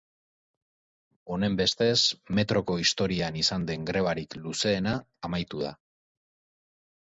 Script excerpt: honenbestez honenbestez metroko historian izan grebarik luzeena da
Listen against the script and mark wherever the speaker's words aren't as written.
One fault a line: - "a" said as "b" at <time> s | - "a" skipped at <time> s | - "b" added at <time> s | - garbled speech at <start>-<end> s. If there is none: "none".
- "honenbestez" skipped at 2.0 s
- "den" added at 3.7 s
- "amaitu" added at 5.3 s